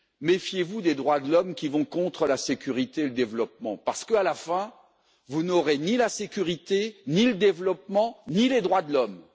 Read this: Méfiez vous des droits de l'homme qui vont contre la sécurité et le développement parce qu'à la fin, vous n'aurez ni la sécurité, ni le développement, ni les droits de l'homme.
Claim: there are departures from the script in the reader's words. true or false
false